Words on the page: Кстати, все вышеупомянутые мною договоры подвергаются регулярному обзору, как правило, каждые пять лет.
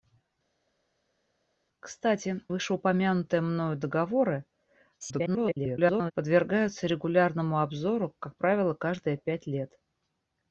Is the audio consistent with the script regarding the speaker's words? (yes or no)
no